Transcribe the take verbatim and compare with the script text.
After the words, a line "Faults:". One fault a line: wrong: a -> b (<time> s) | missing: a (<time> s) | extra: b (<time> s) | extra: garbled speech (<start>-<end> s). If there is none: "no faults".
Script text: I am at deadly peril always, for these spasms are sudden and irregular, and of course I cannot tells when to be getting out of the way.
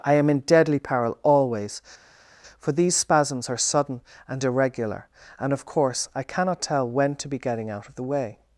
I am in deadly peril always, for these spasms are sudden and irregular, and of course I cannot tell when to be getting out of the way.
Faults:
wrong: at -> in (0.3 s)
wrong: tells -> tell (6.6 s)